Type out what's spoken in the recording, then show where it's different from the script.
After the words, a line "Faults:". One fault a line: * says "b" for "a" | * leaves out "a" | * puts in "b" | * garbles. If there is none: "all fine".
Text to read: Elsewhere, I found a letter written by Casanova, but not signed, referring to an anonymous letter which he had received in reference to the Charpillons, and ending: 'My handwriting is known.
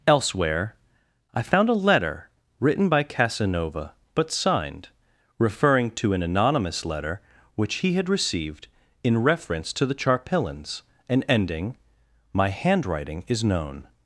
Elsewhere, I found a letter written by Casanova, but signed, referring to an anonymous letter which he had received in reference to the Charpillons, and ending: 'My handwriting is known.
Faults:
* leaves out "not"